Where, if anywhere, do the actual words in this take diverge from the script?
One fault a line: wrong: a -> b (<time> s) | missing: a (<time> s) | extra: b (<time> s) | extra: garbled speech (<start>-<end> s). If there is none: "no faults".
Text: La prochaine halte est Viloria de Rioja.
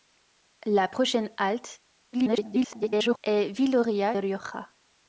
extra: garbled speech (2.1-3.2 s)
missing: de (4.1 s)